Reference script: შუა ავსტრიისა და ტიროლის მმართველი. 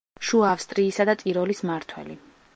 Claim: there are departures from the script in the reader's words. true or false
false